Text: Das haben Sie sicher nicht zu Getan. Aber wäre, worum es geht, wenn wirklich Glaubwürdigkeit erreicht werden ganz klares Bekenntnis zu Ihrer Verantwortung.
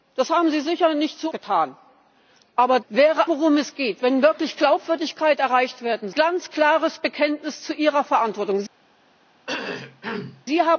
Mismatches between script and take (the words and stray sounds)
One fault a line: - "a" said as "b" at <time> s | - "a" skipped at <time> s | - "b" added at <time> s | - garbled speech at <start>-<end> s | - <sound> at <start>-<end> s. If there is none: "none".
- cough at 9.5-10.5 s